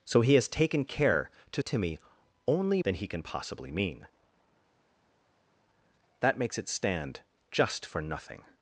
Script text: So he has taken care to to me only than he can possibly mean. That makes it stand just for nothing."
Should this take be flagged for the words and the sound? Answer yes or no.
no